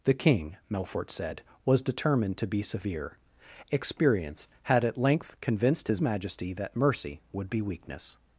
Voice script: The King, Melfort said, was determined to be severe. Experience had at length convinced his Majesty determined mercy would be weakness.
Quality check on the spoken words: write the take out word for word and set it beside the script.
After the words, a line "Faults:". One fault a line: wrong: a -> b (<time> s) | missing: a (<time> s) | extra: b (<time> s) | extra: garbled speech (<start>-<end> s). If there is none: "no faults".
The King, Melfort said, was determined to be severe. Experience had at length convinced his Majesty that mercy would be weakness.
Faults:
wrong: determined -> that (6.5 s)